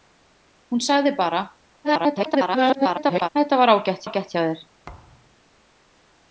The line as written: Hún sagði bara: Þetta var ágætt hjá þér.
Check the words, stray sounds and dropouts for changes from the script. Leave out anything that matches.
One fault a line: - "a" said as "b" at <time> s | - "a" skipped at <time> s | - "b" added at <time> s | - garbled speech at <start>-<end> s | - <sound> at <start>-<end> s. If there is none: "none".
- garbled speech at 1.8-3.3 s
- "ágætt" added at 4.0 s
- thud at 4.8-5.4 s